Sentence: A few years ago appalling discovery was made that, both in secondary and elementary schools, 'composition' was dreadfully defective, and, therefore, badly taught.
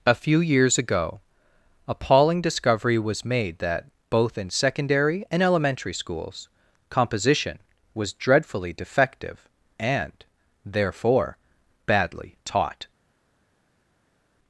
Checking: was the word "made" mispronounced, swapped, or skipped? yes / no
no